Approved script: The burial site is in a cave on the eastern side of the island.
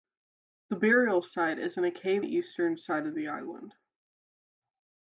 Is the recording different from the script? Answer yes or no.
yes